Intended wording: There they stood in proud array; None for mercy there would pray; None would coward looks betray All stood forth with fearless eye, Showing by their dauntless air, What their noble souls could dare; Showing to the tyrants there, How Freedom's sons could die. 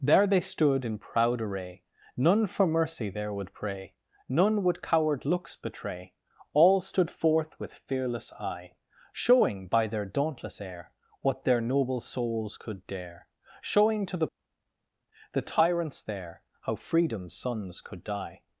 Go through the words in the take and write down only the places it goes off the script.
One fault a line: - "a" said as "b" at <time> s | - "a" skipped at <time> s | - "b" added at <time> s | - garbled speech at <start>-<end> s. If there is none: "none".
- "the" added at 15.3 s